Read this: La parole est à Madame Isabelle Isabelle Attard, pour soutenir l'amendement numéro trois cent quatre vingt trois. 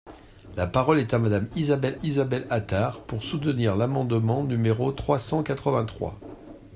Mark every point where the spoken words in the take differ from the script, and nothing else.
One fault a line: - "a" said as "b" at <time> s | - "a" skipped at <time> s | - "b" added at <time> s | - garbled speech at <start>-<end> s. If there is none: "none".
none